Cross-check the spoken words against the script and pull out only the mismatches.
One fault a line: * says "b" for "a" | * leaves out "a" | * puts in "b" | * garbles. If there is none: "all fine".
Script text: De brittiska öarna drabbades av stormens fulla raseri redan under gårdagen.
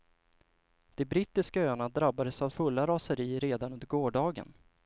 * leaves out "stormens"